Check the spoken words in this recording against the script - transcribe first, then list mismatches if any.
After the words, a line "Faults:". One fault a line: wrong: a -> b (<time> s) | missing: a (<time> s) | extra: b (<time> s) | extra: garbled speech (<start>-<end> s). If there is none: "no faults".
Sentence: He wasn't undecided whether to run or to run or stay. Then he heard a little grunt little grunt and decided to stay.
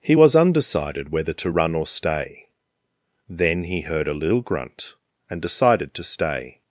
He was undecided whether to run or stay. Then he heard a little grunt and decided to stay.
Faults:
wrong: wasn't -> was (0.1 s)
missing: to run or (1.9 s)
missing: little grunt (4.9 s)